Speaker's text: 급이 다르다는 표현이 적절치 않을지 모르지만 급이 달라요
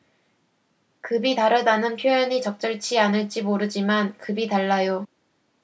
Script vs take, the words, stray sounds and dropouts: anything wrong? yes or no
no